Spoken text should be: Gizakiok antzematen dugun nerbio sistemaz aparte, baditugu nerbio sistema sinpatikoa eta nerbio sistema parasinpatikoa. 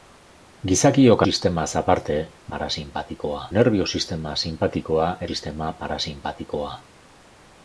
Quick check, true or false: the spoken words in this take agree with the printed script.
false